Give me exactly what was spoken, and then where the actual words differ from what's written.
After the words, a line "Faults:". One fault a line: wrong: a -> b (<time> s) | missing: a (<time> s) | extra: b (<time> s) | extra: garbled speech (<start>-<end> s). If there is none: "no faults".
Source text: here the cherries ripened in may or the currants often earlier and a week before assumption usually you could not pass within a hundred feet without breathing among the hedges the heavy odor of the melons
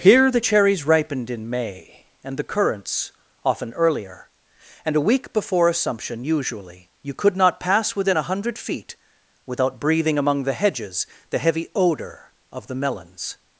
here the cherries ripened in may and the currants often earlier and a week before assumption usually you could not pass within a hundred feet without breathing among the hedges the heavy odor of the melons
Faults:
wrong: or -> and (2.2 s)